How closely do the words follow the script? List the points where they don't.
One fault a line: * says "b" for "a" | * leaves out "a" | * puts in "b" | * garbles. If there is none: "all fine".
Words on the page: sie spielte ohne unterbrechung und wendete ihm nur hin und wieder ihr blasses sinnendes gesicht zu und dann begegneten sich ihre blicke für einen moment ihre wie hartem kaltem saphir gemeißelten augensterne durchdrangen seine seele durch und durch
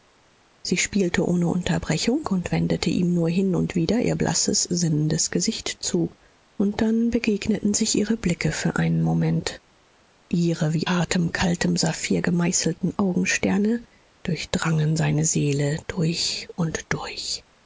all fine